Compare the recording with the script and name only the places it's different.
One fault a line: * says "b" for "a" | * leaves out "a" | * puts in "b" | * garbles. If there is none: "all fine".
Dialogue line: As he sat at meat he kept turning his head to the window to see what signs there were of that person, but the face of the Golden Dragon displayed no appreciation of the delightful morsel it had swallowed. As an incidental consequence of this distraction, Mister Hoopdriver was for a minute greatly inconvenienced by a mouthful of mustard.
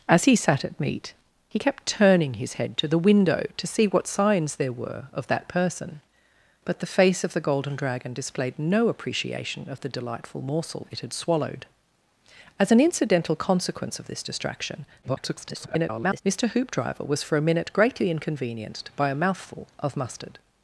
* garbles